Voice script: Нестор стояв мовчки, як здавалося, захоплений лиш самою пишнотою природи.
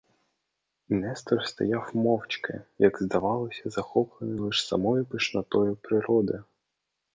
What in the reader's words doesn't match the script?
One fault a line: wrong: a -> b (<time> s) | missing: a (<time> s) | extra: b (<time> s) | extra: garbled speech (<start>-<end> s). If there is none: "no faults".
no faults